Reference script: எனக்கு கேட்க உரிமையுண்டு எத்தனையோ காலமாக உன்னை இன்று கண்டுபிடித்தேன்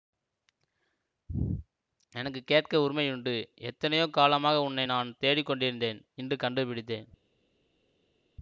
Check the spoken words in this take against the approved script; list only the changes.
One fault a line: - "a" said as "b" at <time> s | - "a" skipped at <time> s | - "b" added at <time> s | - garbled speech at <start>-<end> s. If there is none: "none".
- "நான் தேடிக் கொண்டிருந்தேன்" added at 4.8 s